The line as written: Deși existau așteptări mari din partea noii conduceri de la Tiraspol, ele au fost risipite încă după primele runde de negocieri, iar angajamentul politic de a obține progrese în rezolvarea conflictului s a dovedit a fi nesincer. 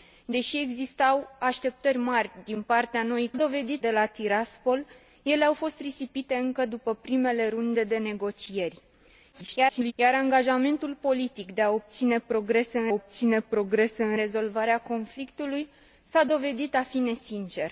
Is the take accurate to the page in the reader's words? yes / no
no